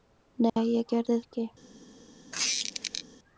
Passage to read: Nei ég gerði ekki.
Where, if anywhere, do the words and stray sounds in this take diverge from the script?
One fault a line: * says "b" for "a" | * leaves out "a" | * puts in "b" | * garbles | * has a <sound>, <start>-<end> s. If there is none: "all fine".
* has a dropout, 0.5-0.6 s
* has a squeak, 2.3-3.0 s